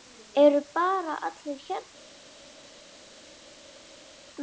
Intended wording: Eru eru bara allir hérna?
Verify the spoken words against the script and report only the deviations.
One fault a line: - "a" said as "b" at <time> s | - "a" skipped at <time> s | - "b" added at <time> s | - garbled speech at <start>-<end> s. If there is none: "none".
- "eru" skipped at 0.6 s